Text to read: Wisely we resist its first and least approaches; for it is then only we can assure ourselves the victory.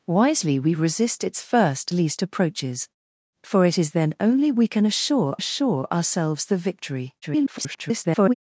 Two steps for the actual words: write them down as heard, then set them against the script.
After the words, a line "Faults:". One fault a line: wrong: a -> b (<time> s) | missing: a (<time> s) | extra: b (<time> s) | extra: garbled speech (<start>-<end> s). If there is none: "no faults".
Wisely we resist its first least approaches; for it is then only we can assure assure ourselves the victory. [garbled]
Faults:
missing: and (1.9 s)
extra: assure (5.3 s)
extra: garbled speech (7.2-8.3 s)